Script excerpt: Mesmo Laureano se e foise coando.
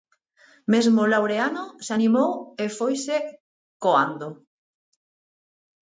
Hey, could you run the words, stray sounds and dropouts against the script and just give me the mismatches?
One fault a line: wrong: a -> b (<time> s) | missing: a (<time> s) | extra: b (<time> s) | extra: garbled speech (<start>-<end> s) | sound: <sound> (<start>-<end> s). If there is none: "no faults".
extra: animou (2.0 s)